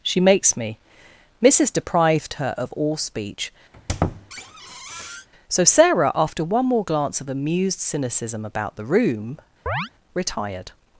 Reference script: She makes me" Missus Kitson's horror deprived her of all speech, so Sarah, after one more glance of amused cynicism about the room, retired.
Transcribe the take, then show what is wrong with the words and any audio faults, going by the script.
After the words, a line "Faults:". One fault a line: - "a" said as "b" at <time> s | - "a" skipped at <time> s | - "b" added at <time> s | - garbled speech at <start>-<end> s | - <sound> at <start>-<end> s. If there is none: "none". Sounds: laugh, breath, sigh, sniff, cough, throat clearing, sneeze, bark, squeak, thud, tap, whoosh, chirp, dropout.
She makes me" Missus deprived her of all speech, so Sarah, after one more glance of amused cynicism about the room, retired.
Faults:
- "Kitson's horror" skipped at 1.7 s
- squeak at 3.7-5.3 s
- chirp at 9.7-9.9 s